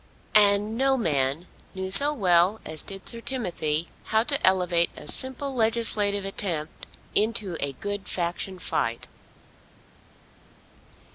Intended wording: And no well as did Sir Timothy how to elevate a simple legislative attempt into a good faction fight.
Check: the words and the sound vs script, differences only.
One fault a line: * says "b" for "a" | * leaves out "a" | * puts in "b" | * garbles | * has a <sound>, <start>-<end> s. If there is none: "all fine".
* puts in "man knew so"